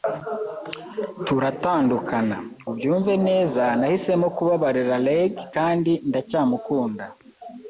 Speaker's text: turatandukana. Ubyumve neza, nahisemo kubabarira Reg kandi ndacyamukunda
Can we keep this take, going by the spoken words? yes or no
yes